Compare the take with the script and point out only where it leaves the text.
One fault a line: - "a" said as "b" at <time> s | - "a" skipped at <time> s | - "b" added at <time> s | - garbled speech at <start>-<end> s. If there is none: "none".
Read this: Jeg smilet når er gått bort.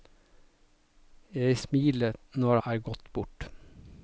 none